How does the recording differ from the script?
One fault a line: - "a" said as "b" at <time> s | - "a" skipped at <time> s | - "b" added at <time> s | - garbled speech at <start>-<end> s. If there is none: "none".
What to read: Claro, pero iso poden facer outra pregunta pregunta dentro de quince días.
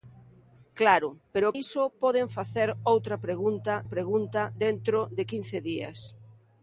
none